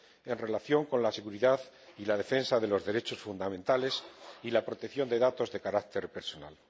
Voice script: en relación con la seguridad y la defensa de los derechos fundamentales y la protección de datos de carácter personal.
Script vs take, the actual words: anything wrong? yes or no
no